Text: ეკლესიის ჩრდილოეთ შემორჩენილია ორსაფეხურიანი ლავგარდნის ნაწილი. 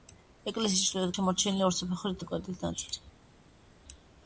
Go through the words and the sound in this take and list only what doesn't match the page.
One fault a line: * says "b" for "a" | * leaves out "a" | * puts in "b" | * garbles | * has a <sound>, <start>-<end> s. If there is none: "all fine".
all fine